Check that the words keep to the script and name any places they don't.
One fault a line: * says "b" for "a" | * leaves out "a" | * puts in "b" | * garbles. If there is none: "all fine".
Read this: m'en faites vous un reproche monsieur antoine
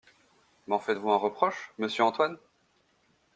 all fine